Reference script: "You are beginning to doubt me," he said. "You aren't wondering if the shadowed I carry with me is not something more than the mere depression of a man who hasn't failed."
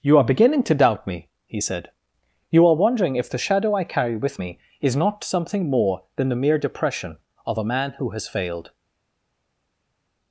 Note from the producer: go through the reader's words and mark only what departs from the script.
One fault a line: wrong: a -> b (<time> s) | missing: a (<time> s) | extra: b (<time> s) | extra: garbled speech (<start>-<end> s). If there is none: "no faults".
wrong: aren't -> are (2.7 s)
wrong: shadowed -> shadow (3.4 s)
wrong: hasn't -> has (8.1 s)